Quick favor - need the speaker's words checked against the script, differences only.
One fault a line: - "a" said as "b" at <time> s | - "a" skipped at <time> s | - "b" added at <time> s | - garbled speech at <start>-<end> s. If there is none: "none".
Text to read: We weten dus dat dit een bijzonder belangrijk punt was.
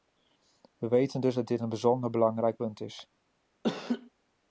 - "was" said as "is" at 2.8 s